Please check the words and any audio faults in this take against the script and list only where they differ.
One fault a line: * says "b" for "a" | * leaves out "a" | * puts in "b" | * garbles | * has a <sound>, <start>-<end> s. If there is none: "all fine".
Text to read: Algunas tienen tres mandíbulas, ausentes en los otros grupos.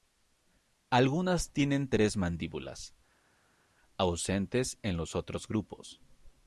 all fine